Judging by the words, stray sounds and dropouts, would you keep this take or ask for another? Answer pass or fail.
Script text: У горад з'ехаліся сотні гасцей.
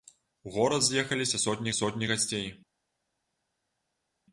fail